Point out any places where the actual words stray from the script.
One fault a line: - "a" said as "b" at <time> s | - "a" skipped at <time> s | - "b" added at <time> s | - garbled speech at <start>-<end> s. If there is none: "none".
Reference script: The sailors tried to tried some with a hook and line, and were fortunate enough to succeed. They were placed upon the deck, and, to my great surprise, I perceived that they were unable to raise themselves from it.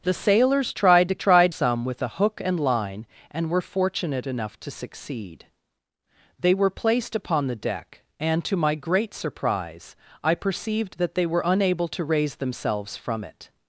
none